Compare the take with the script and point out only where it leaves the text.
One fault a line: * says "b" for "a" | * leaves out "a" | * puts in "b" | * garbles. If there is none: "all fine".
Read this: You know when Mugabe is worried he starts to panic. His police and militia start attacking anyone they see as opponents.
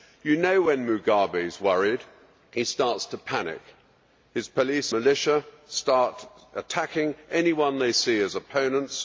* leaves out "and"